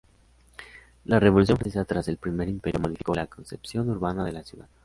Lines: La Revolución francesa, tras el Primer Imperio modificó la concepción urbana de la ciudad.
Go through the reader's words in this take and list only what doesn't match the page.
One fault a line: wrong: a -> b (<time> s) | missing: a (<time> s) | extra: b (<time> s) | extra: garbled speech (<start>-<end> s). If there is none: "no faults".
no faults